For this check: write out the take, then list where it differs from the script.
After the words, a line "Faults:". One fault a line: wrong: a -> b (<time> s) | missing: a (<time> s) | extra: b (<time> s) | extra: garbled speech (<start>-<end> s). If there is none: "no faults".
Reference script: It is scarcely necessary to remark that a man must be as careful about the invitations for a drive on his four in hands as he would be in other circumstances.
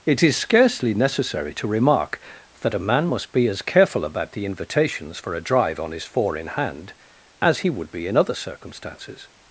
It is scarcely necessary to remark that a man must be as careful about the invitations for a drive on his four in hand as he would be in other circumstances.
Faults:
wrong: hands -> hand (6.5 s)